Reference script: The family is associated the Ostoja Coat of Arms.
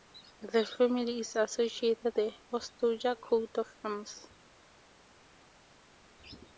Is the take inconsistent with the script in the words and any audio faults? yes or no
no